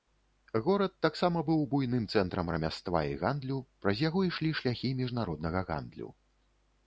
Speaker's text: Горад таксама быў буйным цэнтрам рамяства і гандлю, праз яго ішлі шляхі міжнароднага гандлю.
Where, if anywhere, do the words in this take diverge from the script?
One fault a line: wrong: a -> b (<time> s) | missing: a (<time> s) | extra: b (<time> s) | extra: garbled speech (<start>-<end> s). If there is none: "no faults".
no faults